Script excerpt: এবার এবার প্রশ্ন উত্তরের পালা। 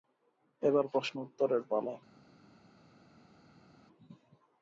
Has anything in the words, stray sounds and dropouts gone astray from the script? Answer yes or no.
yes